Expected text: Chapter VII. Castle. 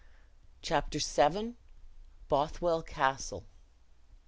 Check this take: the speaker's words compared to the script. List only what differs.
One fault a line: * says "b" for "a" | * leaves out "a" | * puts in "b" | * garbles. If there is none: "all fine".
* puts in "Bothwell"